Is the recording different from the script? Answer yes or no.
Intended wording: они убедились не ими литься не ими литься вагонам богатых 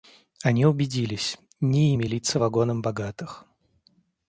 yes